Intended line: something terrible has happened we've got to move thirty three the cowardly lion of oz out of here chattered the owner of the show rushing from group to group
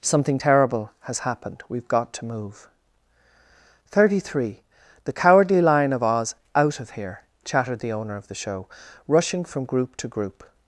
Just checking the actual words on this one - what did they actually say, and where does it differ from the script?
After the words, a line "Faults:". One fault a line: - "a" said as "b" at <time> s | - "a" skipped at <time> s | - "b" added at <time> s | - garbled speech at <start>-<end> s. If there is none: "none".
something terrible has happened we've got to move thirty three the cowardly lion of oz out of here chattered the owner of the show rushing from group to group
Faults:
none